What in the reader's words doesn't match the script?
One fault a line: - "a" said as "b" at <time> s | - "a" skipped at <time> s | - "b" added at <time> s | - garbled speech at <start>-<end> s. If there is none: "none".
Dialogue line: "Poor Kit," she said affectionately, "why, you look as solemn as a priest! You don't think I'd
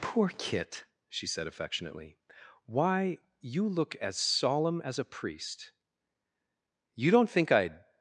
none